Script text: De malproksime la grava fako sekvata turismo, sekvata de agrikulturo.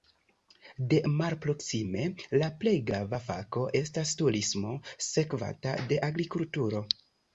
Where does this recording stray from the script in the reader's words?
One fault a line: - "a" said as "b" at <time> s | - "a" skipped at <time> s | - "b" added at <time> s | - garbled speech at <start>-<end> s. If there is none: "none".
- "plej" added at 2.6 s
- "sekvata" said as "estas" at 3.8 s